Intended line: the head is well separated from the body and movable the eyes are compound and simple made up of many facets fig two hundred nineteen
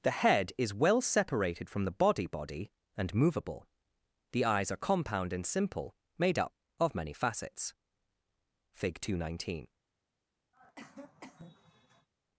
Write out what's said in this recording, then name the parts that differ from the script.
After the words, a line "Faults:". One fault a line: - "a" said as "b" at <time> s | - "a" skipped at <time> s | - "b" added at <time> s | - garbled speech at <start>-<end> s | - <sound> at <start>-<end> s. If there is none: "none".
the head is well separated from the body body and movable the eyes are compound and simple made up of many facets fig two hundred nineteen
Faults:
- "body" added at 2.2 s
- cough at 10.5-12.1 s